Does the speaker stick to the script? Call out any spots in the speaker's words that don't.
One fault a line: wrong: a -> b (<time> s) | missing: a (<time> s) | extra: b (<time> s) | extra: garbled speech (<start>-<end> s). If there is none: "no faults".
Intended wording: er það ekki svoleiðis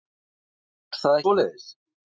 missing: ekki (1.2 s)